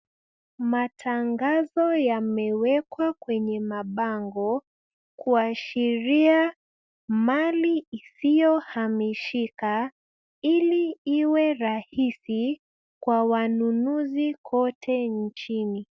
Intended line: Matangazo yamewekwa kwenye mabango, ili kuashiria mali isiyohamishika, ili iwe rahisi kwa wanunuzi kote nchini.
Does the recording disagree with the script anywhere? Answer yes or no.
yes